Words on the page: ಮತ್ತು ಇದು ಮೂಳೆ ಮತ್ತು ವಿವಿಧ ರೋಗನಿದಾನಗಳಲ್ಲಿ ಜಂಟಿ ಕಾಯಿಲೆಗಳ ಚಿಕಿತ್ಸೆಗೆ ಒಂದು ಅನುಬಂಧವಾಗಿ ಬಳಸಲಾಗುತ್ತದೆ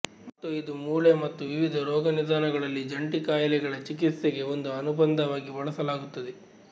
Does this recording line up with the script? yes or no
yes